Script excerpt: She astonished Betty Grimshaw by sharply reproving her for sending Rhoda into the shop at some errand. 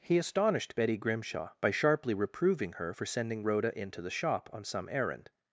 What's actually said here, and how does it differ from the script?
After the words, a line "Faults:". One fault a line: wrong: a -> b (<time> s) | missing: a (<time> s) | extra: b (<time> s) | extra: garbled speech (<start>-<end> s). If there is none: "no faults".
He astonished Betty Grimshaw by sharply reproving her for sending Rhoda into the shop on some errand.
Faults:
wrong: She -> He (0.0 s)
wrong: at -> on (4.5 s)